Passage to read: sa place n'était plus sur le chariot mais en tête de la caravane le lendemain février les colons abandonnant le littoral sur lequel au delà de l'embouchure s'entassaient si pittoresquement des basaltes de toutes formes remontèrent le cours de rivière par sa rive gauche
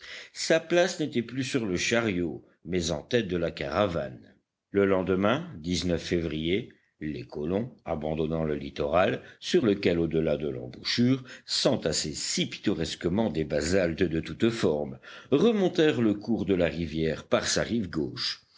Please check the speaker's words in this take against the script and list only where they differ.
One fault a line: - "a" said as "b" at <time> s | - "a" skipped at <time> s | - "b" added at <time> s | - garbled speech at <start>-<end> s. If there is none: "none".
- "la" added at 16.5 s